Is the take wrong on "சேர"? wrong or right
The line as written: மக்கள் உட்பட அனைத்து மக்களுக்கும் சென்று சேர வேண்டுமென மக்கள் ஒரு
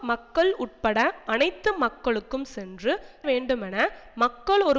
wrong